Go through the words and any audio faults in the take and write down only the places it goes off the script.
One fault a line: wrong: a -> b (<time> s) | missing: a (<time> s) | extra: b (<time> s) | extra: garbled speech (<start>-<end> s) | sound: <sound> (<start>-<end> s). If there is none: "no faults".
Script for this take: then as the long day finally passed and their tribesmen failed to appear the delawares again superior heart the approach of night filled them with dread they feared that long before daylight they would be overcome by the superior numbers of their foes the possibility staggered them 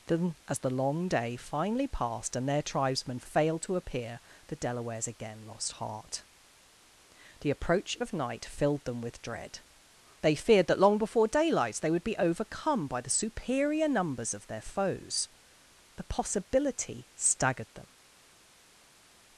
wrong: superior -> lost (5.5 s)